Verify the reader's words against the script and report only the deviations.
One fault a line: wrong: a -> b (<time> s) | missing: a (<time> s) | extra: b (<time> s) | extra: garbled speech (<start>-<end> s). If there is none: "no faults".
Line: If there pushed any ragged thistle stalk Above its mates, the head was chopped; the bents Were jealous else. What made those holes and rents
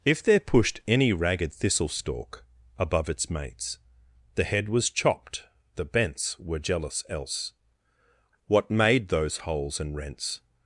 no faults